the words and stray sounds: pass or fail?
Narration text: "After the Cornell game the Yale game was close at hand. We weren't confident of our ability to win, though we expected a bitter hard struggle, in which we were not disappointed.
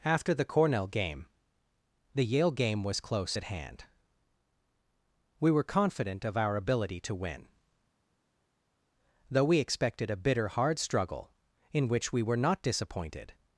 fail